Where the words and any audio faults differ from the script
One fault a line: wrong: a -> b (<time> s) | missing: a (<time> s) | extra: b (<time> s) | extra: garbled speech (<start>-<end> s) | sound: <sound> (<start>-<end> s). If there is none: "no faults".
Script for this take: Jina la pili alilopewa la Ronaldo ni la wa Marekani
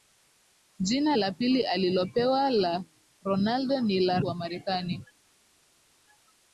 no faults